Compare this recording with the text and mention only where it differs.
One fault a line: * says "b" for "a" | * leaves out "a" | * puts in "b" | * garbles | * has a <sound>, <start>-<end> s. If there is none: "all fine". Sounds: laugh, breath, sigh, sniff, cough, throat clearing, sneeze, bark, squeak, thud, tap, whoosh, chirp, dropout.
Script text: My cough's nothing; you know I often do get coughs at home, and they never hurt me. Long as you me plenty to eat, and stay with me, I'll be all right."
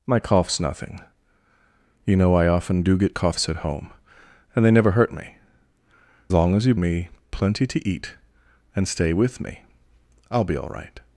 all fine